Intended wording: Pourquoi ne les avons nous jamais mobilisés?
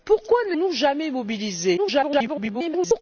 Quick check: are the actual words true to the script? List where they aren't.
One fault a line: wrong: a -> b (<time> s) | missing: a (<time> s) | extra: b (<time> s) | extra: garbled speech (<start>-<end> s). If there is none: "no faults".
missing: les avons (0.6 s)
extra: garbled speech (1.8-3.0 s)